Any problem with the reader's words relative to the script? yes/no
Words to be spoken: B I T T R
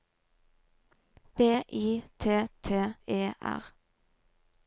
yes